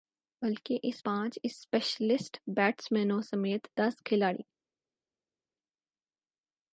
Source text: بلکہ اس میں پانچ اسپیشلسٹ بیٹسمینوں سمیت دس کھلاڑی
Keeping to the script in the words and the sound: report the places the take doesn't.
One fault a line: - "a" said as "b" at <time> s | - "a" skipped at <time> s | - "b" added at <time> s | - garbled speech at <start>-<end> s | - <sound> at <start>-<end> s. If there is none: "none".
- "میں" skipped at 1.0 s